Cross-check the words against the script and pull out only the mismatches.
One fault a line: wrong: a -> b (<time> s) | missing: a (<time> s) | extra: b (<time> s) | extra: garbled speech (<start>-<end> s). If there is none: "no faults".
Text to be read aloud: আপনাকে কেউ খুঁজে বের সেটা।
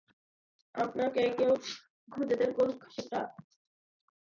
extra: করুক (2.6 s)